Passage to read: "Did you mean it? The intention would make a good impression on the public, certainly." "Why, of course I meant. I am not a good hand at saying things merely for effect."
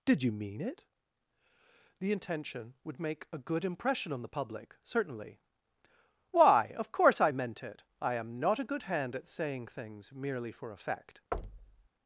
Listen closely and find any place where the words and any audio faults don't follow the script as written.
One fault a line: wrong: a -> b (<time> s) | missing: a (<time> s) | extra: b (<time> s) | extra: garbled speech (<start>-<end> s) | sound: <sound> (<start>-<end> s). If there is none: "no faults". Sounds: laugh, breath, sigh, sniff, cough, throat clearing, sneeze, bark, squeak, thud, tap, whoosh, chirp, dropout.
extra: it (7.6 s)
sound: thud (11.3-11.9 s)